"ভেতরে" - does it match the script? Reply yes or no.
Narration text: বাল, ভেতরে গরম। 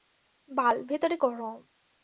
yes